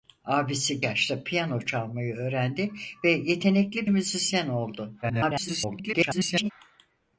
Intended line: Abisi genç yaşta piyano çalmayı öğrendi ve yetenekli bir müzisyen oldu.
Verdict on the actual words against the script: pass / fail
fail